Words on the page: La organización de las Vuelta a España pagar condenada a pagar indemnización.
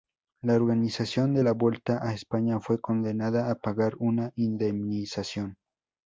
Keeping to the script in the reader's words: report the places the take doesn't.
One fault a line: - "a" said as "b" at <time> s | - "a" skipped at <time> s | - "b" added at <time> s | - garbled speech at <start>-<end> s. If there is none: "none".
- "las" said as "la" at 1.4 s
- "pagar" said as "fue" at 2.6 s
- "una" added at 4.0 s